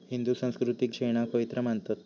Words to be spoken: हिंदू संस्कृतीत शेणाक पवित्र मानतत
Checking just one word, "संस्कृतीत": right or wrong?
right